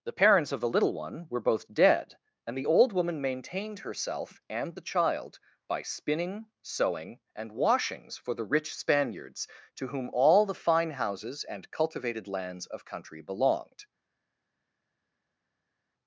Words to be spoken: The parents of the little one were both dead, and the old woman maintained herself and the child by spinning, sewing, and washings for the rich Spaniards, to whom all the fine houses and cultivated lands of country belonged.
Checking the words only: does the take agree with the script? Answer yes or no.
yes